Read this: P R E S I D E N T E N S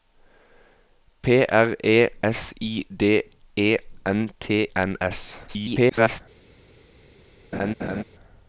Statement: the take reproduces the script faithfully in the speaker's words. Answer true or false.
false